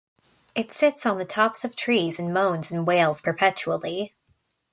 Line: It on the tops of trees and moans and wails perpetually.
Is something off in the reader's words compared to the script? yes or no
yes